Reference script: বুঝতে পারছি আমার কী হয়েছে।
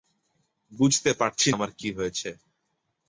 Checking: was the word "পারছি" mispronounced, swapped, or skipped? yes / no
no